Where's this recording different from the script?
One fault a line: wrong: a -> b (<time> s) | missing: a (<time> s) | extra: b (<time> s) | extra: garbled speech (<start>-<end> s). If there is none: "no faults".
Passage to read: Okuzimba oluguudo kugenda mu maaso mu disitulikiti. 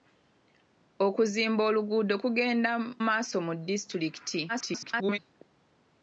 missing: mu (2.7 s)
extra: garbled speech (4.5-5.2 s)